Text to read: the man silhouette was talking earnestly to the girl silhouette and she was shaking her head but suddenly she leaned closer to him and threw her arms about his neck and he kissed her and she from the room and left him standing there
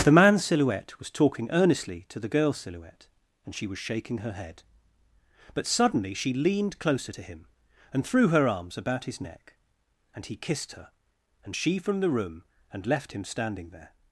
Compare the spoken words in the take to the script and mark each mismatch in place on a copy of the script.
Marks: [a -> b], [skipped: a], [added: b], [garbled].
the man silhouette was talking earnestly to the girl silhouette and she was shaking her head but suddenly she leaned closer to him and threw her arms about his neck and he kissed her and she from the room and left him standing there